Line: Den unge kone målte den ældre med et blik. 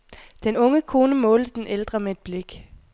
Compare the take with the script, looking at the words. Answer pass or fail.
pass